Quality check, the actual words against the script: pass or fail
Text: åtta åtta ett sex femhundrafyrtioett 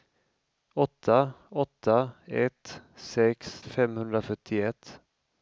pass